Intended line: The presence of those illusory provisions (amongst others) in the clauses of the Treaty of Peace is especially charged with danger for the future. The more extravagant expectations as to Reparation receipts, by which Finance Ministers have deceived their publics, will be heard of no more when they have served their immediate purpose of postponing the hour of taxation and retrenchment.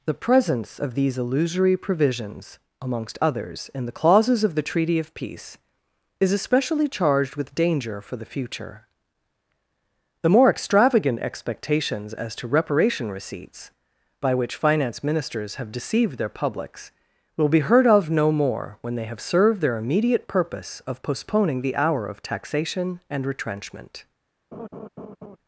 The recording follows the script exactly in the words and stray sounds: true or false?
false